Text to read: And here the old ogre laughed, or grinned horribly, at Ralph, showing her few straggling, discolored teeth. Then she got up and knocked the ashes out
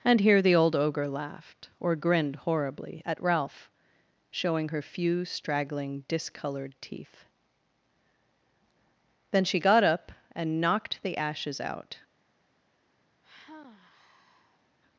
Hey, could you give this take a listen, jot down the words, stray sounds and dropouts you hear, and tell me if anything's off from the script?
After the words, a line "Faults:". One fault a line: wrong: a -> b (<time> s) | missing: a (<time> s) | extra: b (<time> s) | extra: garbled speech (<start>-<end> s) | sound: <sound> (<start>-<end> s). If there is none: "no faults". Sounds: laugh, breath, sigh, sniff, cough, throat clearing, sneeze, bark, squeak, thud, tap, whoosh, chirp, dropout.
And here the old ogre laughed, or grinned horribly, at Ralph, showing her few straggling, discolored teeth. Then she got up and knocked the ashes out
Faults:
sound: sigh (13.2-14.8 s)